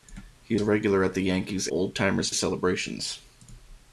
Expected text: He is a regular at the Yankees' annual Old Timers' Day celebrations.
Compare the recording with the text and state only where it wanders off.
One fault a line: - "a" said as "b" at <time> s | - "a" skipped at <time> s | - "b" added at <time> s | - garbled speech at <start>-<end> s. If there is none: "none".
- "is" skipped at 0.6 s
- "annual" skipped at 1.7 s
- "Day" skipped at 2.3 s